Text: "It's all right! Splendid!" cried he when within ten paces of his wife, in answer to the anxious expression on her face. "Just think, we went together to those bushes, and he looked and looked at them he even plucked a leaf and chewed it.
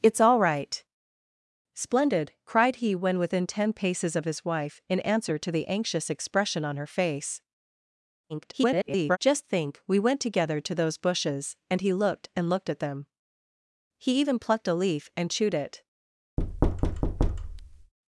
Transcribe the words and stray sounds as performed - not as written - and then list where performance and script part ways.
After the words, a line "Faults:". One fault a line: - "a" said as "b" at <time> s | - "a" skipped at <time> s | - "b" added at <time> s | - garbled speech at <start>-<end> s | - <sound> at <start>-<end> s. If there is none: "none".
"It's all right! Splendid!" cried he when within ten paces of his wife, in answer to the anxious expression on her face. [garbled] "Just think, we went together to those bushes, and he looked and looked at them he even plucked a leaf and chewed it.
Faults:
- garbled speech at 8.3-9.2 s
- thud at 16.4-17.9 s